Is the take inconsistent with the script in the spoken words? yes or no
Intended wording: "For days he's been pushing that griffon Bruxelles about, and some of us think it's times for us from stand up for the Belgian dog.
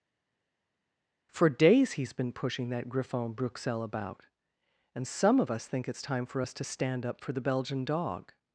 yes